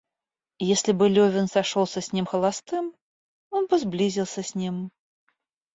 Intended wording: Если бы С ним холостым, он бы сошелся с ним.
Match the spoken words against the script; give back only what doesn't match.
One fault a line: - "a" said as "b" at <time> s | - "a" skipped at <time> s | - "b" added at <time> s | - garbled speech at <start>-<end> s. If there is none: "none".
- "Левин сошелся" added at 1.1 s
- "сошелся" said as "сблизился" at 3.8 s